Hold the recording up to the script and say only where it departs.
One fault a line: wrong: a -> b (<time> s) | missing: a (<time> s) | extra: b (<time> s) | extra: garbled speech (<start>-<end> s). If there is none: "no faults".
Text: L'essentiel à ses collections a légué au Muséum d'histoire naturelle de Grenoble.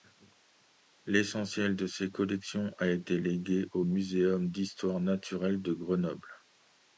wrong: à -> de (1.8 s)
extra: été (2.9 s)